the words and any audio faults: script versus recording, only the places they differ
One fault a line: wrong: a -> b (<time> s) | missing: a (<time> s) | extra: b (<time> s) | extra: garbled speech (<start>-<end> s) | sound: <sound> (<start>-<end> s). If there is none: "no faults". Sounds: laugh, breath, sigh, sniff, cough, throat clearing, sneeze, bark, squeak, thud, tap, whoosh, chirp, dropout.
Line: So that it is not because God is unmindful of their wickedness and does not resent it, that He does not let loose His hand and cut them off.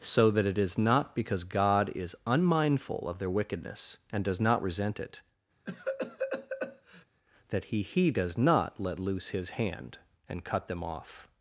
sound: cough (5.7-7.1 s)
extra: He (7.8 s)